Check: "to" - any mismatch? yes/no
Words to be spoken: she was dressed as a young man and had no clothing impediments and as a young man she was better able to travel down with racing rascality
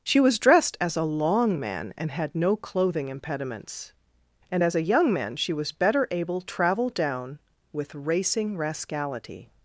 yes